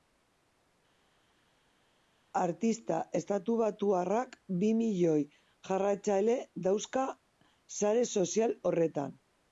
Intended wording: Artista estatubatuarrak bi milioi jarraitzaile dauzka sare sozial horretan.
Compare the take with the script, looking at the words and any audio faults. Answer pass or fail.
pass